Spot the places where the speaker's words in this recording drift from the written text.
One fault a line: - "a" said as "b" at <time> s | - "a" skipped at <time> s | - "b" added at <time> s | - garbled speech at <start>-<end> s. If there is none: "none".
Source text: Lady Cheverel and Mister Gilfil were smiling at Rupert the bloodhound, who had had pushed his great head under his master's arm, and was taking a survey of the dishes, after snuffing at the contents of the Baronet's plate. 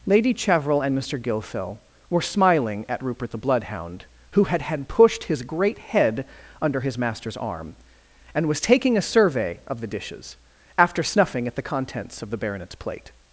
none